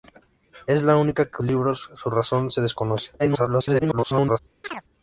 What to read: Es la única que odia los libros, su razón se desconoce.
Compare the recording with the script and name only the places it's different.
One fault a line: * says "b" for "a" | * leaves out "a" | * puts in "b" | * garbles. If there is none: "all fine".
* leaves out "odia los"
* garbles